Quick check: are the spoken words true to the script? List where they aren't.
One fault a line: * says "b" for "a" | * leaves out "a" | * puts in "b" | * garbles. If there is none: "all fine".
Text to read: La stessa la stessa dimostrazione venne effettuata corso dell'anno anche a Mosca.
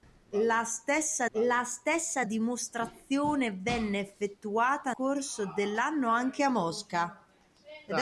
all fine